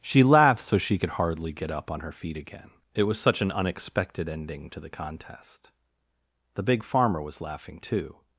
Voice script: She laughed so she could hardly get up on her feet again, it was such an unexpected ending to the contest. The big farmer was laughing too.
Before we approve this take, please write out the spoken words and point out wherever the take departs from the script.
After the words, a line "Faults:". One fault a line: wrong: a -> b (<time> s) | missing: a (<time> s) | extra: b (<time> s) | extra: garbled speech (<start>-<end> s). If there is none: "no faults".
She laughed so she could hardly get up on her feet again, it was such an unexpected ending to the contest. The big farmer was laughing too.
Faults:
no faults